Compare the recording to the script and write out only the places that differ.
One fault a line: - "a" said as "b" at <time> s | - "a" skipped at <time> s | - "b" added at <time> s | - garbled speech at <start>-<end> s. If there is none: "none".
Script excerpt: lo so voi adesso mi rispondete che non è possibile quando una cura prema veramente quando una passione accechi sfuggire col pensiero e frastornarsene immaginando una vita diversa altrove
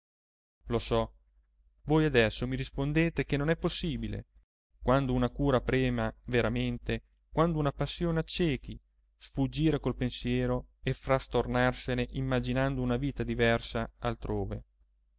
none